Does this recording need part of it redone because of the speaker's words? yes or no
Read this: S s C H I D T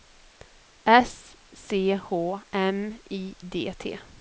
yes